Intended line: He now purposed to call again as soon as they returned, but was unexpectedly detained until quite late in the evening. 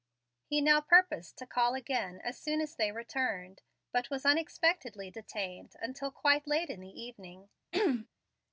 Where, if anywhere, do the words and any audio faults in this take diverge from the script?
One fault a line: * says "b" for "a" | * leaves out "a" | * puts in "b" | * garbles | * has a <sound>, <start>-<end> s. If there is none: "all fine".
* has a throat clearing, 7.7-8.1 s